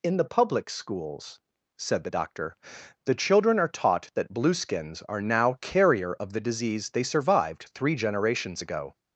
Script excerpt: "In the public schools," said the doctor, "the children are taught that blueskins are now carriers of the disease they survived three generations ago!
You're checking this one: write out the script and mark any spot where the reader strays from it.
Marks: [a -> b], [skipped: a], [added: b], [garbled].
"In the public schools," said the doctor, "the children are taught that blueskins are now [carriers -> carrier] of the disease they survived three generations ago!